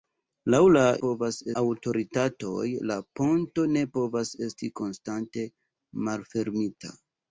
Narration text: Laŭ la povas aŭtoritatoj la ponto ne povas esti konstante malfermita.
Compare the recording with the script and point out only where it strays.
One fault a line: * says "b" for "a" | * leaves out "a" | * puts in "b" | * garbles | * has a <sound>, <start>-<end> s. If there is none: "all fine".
all fine